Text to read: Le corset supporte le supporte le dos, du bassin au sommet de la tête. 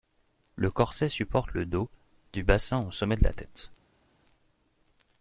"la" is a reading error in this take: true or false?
false